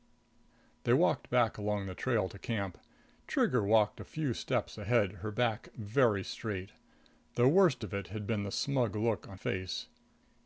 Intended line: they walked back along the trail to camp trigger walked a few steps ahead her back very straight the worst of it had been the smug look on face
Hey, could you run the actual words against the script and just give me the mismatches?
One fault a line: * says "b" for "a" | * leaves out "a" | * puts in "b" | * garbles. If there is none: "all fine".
all fine